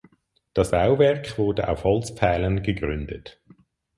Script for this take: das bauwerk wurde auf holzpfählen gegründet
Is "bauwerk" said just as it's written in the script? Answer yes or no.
yes